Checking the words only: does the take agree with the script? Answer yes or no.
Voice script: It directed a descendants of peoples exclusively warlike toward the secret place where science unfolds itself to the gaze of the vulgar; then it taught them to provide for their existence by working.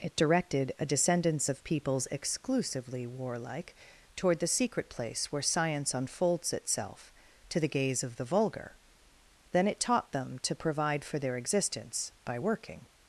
yes